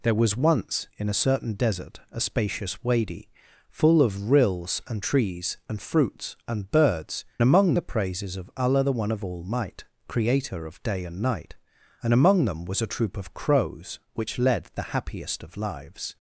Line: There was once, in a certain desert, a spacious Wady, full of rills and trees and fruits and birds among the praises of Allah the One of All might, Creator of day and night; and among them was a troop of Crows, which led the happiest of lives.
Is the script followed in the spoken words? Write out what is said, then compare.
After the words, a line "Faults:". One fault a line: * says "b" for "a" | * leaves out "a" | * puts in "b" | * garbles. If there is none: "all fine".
There was once, in a certain desert, a spacious Wady, full of rills and trees and fruits and birds among the praises of Allah the One of All might, Creator of day and night; and among them was a troop of Crows, which led the happiest of lives.
Faults:
all fine